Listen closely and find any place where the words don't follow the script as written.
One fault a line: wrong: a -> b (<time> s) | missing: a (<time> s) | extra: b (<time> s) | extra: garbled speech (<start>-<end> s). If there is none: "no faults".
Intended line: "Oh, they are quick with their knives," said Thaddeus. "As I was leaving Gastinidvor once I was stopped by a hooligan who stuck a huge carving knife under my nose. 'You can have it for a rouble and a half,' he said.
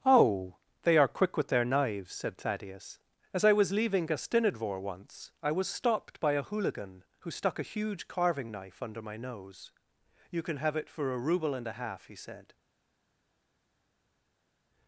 no faults